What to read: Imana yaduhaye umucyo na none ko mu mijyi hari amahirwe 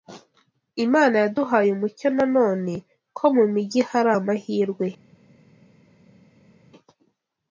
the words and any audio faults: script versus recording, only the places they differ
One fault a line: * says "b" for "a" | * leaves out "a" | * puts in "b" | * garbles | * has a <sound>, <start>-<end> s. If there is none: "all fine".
all fine